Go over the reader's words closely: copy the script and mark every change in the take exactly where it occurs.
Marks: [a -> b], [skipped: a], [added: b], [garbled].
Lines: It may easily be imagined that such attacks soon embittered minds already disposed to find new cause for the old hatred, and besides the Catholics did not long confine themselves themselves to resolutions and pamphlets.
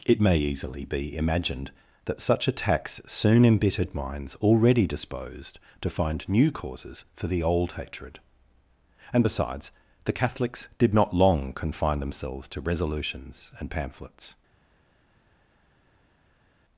It may easily be imagined that such attacks soon embittered minds already disposed to find new [cause -> causes] for the old hatred, and besides the Catholics did not long confine themselves [skipped: themselves] to resolutions and pamphlets.